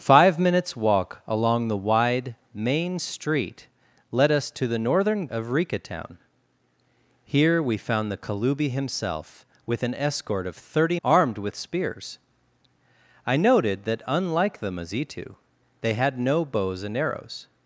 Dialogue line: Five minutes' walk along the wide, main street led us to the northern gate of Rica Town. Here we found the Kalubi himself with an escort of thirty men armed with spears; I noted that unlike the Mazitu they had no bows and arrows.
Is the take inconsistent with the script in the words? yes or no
yes